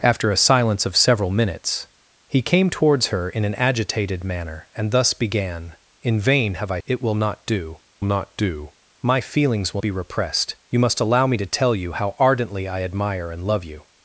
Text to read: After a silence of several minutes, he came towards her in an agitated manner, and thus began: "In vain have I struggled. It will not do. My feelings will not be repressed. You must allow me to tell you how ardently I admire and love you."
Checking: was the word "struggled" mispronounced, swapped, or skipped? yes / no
yes